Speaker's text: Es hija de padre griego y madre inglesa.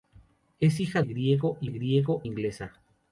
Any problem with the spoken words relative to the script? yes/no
yes